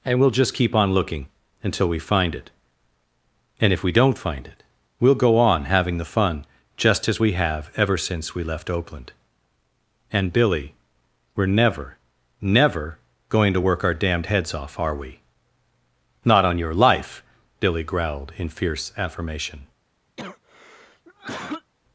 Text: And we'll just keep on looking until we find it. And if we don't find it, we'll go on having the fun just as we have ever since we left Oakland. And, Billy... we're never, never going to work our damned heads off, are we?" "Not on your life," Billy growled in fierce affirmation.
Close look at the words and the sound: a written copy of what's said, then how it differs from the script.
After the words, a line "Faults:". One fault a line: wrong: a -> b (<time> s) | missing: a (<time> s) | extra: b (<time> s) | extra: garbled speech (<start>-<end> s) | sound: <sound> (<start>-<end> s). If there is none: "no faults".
And we'll just keep on looking until we find it. And if we don't find it, we'll go on having the fun just as we have ever since we left Oakland. And, Billy... we're never, never going to work our damned heads off, are we?" "Not on your life," Billy growled in fierce affirmation.
Faults:
sound: cough (20.2-21.7 s)